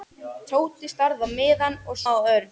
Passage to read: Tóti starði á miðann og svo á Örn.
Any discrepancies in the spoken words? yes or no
yes